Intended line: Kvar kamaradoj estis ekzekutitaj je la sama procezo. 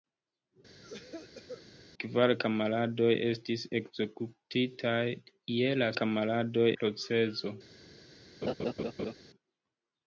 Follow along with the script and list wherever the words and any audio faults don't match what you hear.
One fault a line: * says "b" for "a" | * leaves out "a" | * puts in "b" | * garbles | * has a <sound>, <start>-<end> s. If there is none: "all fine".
* has a cough, 0.8-1.6 s
* says "kamaradoj" for "sama"
* has a laugh, 8.4-9.1 s